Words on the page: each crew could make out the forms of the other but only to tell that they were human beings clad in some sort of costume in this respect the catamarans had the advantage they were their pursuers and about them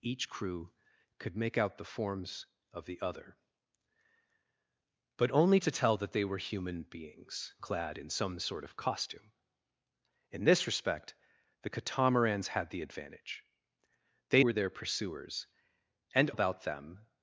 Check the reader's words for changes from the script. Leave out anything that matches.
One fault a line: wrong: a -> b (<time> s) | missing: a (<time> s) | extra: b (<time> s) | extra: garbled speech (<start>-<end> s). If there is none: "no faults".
no faults